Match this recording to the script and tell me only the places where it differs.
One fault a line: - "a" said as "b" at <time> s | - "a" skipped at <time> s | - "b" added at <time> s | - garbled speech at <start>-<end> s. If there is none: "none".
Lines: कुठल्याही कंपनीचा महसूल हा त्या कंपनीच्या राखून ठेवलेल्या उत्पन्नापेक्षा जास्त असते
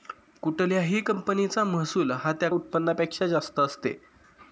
- "कंपनीच्या राखून ठेवलेल्या" skipped at 2.5 s